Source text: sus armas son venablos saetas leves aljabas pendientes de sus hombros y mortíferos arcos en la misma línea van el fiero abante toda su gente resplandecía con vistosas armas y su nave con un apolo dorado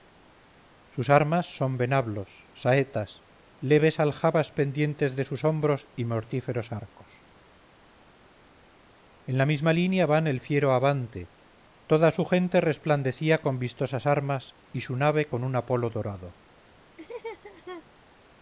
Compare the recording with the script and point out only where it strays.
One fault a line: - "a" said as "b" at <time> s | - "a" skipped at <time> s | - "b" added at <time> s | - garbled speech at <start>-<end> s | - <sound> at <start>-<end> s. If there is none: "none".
- laugh at 17.0-17.8 s